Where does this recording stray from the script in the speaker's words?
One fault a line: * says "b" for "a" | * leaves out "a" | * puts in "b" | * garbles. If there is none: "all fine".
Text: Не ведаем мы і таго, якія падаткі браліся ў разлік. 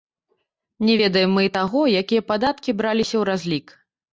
all fine